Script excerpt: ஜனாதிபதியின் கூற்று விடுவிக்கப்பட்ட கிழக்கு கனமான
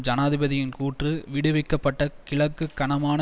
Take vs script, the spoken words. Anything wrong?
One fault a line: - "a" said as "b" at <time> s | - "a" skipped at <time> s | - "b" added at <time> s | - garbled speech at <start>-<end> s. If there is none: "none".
none